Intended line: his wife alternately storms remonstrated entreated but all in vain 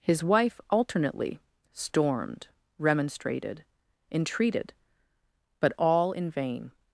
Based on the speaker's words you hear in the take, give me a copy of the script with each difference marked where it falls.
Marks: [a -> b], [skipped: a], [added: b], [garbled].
his wife alternately [storms -> stormed] remonstrated entreated but all in vain